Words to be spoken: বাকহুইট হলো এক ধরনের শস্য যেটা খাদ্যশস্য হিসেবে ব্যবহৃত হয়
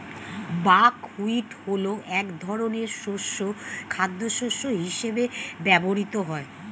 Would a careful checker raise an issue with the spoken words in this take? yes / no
yes